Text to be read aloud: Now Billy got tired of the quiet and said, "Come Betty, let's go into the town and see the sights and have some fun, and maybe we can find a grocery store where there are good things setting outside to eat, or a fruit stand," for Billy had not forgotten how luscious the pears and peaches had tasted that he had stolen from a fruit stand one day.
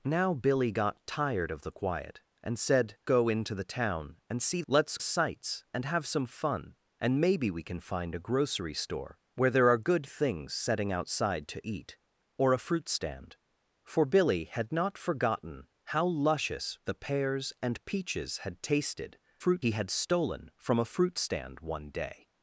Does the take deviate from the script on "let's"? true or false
true